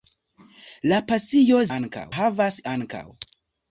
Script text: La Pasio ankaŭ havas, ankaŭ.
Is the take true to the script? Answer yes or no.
yes